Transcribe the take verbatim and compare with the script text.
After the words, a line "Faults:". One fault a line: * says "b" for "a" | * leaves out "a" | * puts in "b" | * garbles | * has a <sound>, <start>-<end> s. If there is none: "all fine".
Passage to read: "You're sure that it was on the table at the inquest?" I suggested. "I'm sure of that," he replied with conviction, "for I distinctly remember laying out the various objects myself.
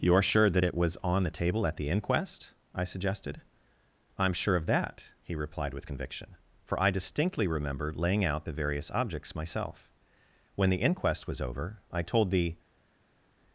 "You're sure that it was on the table at the inquest?" I suggested. "I'm sure of that," he replied with conviction, "for I distinctly remember laying out the various objects myself. When the inquest was over, I told the
Faults:
* puts in "When the inquest was over I told the"